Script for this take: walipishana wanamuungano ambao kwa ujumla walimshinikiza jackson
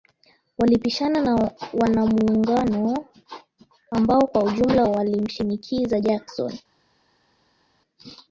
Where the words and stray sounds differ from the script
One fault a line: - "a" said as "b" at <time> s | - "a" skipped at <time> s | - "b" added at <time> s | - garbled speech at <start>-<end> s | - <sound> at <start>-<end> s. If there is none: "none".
- "na" added at 1.2 s